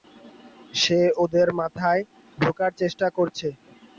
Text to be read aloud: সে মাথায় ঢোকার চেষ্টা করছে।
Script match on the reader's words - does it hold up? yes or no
no